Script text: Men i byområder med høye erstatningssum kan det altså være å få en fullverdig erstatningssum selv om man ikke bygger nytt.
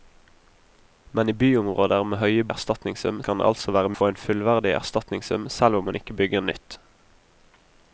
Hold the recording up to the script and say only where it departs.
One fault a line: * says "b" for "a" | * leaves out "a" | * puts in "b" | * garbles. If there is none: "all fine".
all fine